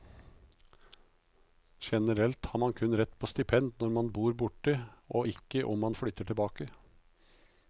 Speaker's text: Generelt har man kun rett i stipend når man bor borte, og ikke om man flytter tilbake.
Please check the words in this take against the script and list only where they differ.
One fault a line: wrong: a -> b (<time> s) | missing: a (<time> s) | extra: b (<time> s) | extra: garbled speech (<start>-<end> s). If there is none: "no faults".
wrong: i -> på (3.2 s)